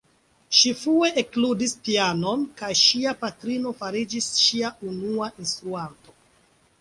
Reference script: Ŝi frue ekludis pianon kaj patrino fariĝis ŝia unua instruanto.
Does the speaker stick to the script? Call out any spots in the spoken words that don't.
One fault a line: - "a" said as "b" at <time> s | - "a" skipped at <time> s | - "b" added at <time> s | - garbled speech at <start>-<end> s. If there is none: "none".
- "ŝia" added at 2.8 s